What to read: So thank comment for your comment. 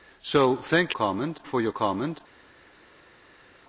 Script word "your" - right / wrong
right